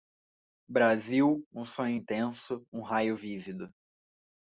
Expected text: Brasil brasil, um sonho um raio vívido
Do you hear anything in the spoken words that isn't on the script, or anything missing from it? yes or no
yes